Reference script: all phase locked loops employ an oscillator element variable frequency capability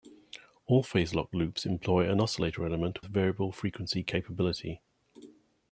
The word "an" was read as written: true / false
true